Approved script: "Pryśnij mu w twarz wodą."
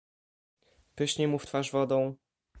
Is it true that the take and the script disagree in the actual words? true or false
false